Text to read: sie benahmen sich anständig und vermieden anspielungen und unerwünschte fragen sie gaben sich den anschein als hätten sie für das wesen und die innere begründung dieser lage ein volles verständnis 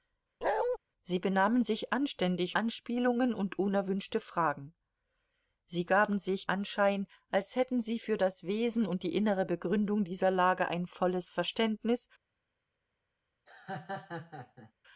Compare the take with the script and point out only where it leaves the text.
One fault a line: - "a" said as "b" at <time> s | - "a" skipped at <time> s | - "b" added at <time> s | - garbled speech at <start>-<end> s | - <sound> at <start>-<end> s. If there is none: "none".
- bark at 0.4-0.8 s
- "und vermieden" skipped at 2.6 s
- "den" skipped at 6.4 s
- laugh at 13.5-14.7 s